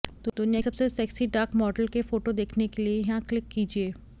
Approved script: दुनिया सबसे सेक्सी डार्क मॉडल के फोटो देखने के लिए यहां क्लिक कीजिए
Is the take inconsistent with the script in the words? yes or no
no